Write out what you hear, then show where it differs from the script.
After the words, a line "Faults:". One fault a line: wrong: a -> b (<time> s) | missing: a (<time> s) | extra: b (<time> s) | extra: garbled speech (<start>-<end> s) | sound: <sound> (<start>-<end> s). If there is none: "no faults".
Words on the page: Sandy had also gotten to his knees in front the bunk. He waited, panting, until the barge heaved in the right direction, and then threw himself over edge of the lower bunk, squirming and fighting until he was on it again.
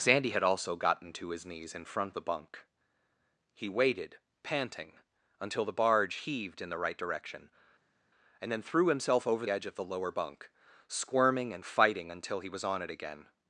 Sandy had also gotten to his knees in front the bunk. He waited, panting, until the barge heaved in the right direction, and then threw himself over edge of the lower bunk, squirming and fighting until he was on it again.
Faults:
no faults